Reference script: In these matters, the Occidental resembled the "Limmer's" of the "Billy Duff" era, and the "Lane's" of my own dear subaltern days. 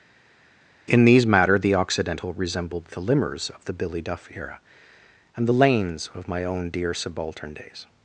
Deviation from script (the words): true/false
true